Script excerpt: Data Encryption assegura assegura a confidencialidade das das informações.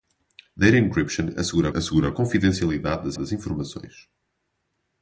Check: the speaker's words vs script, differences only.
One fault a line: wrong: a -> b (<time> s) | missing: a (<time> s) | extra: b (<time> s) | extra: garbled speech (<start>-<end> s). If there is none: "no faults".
no faults